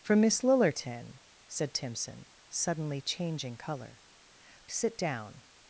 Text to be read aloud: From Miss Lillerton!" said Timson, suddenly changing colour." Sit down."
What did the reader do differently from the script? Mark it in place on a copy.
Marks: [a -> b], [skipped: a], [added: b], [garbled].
From Miss Lillerton!" said Timson, suddenly changing colour." Sit down."